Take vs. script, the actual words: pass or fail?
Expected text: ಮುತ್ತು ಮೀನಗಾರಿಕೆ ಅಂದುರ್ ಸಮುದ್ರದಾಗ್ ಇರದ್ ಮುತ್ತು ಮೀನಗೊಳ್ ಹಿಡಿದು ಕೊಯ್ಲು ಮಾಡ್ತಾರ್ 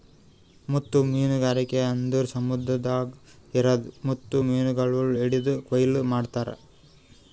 pass